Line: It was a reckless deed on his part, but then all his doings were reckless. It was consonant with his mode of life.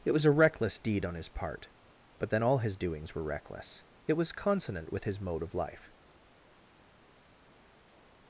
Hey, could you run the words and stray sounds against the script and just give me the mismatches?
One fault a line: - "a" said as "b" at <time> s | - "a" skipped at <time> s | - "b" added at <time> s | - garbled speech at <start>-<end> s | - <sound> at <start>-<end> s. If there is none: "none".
none